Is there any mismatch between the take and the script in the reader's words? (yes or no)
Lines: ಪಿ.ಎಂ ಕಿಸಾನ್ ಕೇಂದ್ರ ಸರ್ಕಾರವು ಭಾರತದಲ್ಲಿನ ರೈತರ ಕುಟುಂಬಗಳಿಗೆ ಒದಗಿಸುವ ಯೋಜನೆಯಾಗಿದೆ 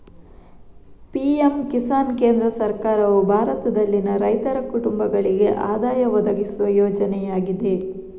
yes